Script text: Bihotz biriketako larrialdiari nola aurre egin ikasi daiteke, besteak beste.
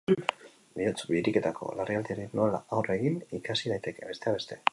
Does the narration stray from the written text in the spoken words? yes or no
no